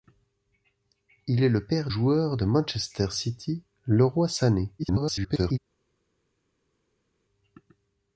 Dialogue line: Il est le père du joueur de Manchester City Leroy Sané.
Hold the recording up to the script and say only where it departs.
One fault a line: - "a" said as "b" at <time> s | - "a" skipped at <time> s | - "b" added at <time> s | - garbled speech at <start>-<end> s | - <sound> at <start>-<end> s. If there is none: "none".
- "du" skipped at 1.9 s
- garbled speech at 4.8-5.6 s